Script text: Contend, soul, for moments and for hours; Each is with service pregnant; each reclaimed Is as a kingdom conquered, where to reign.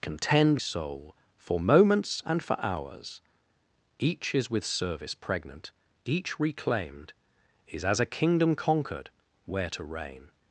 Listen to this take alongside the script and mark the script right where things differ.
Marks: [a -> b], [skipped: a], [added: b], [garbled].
Contend, soul, for moments and for hours; Each is with service pregnant; each reclaimed Is as a kingdom conquered, where to reign.